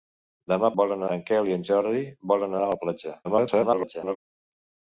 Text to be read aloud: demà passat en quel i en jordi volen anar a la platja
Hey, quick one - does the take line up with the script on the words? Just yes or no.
no